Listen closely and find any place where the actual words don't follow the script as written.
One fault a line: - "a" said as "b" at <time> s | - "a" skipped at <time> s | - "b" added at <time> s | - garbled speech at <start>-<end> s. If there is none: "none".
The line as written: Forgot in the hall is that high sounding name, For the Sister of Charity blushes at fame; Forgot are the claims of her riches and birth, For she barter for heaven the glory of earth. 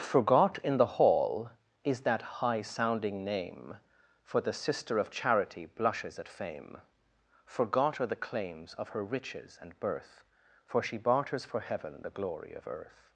- "barter" said as "barters" at 11.0 s